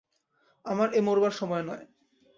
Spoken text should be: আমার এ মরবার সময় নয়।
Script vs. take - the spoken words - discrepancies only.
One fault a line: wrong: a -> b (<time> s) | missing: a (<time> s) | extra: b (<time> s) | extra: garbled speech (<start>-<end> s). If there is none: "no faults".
no faults